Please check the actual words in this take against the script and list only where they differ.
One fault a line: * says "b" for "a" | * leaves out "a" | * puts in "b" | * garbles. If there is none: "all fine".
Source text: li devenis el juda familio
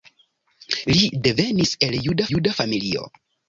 * puts in "juda"